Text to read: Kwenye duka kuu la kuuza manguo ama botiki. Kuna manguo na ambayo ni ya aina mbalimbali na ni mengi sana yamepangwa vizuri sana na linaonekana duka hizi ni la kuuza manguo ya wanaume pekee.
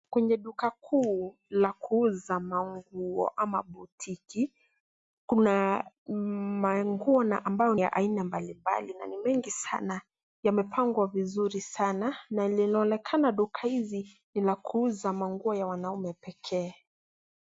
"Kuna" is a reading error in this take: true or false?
false